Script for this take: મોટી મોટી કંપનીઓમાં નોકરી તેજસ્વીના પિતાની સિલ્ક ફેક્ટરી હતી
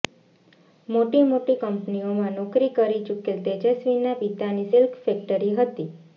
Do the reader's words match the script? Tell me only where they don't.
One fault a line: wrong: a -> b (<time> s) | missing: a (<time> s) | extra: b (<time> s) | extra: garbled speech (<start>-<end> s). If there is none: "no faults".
extra: કરી ચૂકેલ (2.8 s)